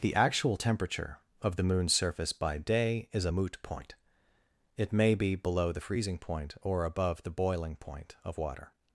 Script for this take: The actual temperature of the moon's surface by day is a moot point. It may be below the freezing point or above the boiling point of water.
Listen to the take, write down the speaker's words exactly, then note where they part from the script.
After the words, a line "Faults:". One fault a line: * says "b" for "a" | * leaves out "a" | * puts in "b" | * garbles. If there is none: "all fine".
The actual temperature of the moon's surface by day is a moot point. It may be below the freezing point or above the boiling point of water.
Faults:
all fine